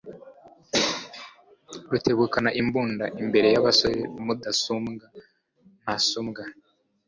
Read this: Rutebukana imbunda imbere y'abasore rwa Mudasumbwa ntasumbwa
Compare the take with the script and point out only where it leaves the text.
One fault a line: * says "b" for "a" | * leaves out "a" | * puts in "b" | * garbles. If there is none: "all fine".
* leaves out "rwa"